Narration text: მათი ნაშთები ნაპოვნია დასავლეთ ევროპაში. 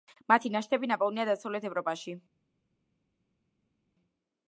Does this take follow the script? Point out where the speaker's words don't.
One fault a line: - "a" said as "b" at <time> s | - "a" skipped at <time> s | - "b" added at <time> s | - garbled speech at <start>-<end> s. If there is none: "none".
none